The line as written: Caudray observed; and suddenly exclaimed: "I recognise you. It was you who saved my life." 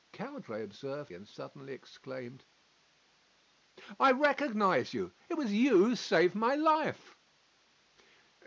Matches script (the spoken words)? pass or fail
pass